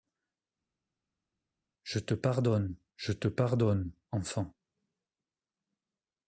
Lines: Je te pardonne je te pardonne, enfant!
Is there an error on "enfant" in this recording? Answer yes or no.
no